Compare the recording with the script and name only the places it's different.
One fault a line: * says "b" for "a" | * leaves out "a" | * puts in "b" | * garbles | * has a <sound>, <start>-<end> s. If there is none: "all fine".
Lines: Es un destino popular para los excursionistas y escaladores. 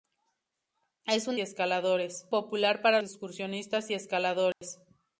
* says "escaladores" for "destino"
* leaves out "los"
* has a dropout, 4.5-4.6 s